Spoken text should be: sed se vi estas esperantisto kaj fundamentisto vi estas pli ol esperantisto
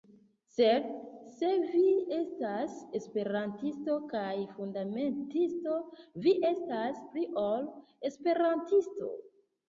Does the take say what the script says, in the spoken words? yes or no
yes